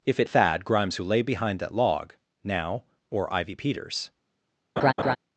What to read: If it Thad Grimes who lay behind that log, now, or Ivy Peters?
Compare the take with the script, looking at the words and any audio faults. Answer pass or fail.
fail